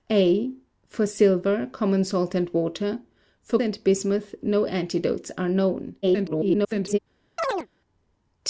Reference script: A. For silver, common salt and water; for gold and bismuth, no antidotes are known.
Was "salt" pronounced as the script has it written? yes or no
yes